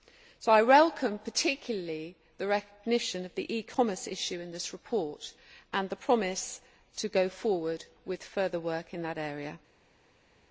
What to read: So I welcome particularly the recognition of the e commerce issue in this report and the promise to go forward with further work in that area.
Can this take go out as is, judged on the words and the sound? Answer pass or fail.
pass